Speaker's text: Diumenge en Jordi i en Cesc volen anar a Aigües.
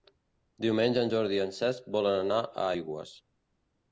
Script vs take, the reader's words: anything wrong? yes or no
no